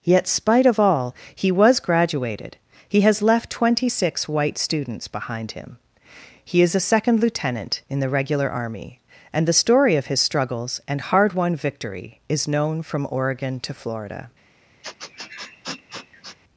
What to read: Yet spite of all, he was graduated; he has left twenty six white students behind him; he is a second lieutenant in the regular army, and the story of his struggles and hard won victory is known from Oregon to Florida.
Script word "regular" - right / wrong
right